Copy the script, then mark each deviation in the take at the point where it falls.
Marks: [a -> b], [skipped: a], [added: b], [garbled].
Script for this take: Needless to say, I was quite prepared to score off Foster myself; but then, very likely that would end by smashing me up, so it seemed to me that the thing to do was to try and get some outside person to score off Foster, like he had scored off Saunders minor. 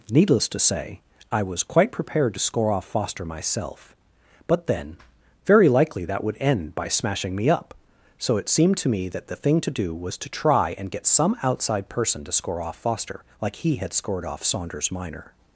Needless to say, I was quite prepared to score off Foster myself; but then, very likely that would end by smashing me up, so it seemed to me that the thing to do was to try and get some outside person to score off Foster, like he had scored off Saunders minor.